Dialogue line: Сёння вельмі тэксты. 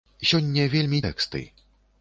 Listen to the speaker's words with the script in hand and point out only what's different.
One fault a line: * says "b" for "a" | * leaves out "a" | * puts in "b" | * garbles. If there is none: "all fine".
all fine